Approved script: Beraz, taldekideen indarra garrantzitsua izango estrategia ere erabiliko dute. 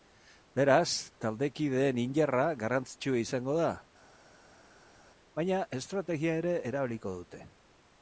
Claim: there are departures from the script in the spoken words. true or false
true